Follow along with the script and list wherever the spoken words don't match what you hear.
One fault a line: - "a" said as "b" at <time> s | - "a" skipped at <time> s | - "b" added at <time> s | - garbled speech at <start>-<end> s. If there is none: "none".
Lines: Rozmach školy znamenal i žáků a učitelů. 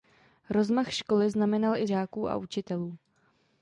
none